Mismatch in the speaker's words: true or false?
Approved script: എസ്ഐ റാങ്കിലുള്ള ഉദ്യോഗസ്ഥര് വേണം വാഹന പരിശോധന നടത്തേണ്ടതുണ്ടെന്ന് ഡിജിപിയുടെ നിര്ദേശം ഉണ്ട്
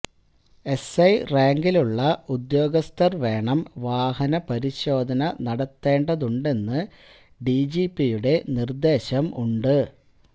false